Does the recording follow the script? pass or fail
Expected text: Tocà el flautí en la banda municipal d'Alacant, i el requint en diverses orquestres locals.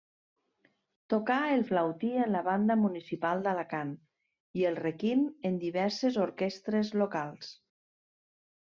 pass